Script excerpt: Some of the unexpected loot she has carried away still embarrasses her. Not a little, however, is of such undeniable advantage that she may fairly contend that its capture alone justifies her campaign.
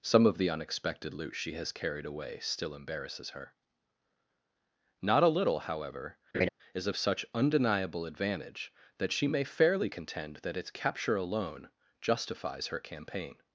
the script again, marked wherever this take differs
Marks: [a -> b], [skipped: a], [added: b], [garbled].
Some of the unexpected loot she has carried away still embarrasses her. Not a little, however, is of such undeniable advantage that she may fairly contend that its capture alone justifies her campaign.